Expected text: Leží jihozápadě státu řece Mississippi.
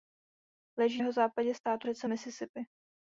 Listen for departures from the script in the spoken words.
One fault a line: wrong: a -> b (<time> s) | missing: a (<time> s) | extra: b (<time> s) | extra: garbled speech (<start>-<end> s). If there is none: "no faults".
no faults